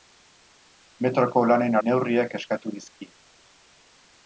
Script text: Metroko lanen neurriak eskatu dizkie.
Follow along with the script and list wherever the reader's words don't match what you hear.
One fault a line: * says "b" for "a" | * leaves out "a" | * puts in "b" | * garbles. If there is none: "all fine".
all fine